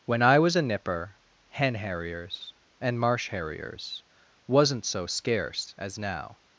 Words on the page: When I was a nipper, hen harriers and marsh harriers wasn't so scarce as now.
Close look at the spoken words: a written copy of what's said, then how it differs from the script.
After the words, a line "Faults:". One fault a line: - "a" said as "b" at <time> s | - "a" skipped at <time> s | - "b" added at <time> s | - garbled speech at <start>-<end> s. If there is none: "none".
When I was a nipper, hen harriers and marsh harriers wasn't so scarce as now.
Faults:
none